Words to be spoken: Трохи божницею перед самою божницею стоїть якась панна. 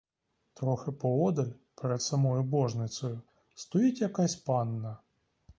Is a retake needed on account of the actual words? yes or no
yes